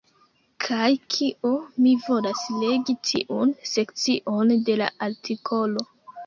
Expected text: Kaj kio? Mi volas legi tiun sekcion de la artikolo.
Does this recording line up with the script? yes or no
yes